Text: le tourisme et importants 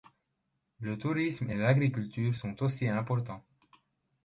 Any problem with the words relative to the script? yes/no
yes